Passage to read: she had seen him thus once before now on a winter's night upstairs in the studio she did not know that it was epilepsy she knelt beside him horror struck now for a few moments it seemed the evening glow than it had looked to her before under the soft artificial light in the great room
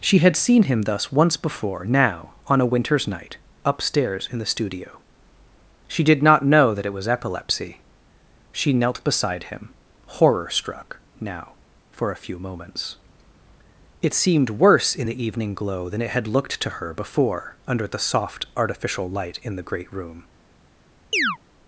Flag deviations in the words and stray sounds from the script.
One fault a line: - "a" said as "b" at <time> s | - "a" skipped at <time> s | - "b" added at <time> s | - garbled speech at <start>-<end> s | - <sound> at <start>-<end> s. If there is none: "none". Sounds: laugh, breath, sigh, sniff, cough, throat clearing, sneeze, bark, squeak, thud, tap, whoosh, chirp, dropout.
- "worse in" added at 14.5 s
- chirp at 21.1-21.4 s